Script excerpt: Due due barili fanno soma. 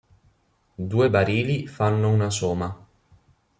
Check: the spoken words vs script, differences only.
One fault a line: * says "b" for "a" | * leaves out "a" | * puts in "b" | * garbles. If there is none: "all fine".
* leaves out "due"
* puts in "una"